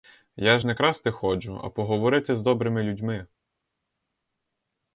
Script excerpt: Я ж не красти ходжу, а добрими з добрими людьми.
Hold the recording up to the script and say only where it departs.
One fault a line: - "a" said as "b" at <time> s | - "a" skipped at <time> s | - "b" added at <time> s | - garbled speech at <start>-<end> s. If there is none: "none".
- "добрими" said as "поговорити" at 1.7 s